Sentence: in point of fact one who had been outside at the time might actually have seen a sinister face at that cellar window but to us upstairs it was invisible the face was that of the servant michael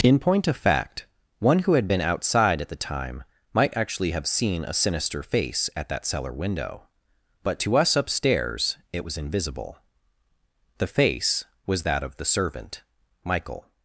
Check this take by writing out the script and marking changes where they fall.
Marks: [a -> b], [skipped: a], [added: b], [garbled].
in point of fact one who had been outside at the time might actually have seen a sinister face at that cellar window but to us upstairs it was invisible the face was that of the servant michael